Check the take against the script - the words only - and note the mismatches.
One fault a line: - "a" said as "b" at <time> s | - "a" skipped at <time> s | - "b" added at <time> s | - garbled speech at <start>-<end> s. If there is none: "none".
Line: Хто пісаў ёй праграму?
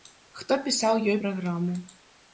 none